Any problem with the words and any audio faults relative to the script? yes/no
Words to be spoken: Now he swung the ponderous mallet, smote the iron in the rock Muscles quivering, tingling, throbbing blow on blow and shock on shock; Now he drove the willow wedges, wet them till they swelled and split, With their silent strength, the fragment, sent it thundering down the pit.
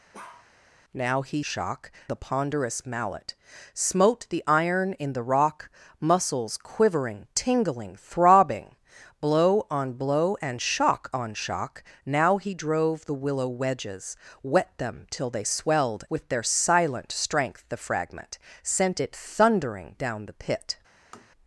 yes